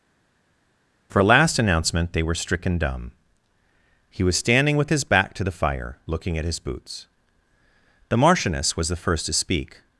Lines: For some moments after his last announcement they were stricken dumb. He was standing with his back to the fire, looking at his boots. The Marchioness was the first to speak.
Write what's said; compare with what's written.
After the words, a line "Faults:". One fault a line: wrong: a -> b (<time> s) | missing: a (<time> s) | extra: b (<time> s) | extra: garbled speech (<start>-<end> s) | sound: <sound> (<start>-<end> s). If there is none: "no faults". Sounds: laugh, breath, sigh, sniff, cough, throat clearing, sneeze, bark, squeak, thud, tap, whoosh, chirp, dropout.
For last announcement they were stricken dumb. He was standing with his back to the fire, looking at his boots. The Marchioness was the first to speak.
Faults:
missing: some moments after his (1.2 s)